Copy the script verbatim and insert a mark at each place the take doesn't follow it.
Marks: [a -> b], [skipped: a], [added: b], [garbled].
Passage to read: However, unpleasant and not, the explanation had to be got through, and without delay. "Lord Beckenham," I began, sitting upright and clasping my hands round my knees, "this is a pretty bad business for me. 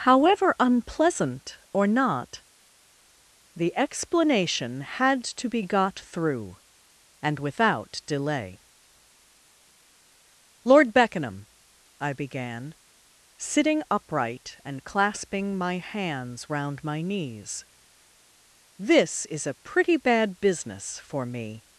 However, unpleasant [and -> or] not, the explanation had to be got through, and without delay. "Lord Beckenham," I began, sitting upright and clasping my hands round my knees, "this is a pretty bad business for me.